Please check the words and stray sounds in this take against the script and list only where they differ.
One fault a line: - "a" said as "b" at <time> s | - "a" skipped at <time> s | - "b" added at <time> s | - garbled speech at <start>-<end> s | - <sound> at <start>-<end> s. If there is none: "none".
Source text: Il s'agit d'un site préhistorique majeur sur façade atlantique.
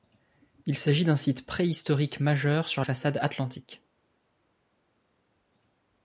none